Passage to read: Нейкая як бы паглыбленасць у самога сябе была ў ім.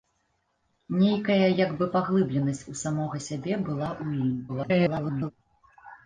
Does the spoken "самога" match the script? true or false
true